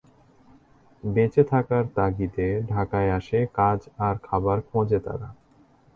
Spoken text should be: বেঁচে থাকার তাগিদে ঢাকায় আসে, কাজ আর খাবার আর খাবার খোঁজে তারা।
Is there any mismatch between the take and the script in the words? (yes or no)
yes